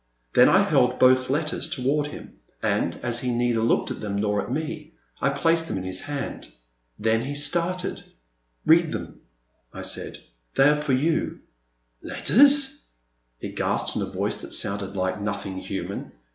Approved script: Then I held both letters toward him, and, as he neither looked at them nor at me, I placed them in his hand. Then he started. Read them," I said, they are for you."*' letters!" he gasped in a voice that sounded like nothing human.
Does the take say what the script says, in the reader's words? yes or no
yes